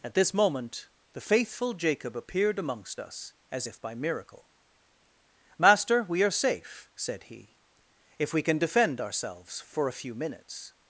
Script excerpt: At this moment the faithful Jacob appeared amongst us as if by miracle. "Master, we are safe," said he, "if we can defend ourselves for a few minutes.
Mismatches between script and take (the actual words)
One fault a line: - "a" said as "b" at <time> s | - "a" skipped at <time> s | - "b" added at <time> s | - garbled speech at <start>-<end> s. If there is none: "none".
none